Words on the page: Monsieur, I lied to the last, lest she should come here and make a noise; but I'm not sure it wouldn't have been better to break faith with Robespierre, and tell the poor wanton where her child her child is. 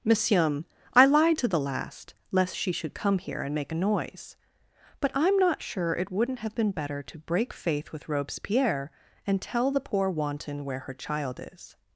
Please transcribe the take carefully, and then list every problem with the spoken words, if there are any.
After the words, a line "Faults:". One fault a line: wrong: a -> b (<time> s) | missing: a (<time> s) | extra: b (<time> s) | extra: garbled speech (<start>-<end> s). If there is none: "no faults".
Monsieur, I lied to the last, lest she should come here and make a noise; but I'm not sure it wouldn't have been better to break faith with Robespierre, and tell the poor wanton where her child is.
Faults:
missing: her child (11.4 s)